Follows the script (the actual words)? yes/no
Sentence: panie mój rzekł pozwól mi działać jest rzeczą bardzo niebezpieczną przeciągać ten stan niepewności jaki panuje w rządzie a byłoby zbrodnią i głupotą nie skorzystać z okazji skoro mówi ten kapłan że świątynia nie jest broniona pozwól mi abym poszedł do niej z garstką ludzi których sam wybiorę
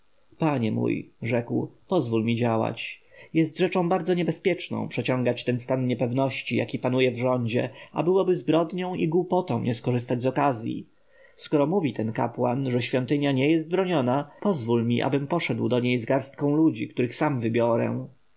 yes